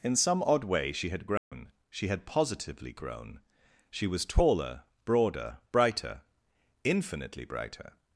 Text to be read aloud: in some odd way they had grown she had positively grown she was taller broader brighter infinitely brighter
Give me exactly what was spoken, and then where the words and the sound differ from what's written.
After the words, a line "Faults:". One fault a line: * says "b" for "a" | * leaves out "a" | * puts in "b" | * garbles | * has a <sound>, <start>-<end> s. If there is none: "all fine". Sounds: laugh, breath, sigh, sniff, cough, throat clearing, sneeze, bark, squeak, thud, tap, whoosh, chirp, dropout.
in some odd way she had grown she had positively grown she was taller broader brighter infinitely brighter
Faults:
* says "she" for "they"
* has a dropout, 1.4-1.5 s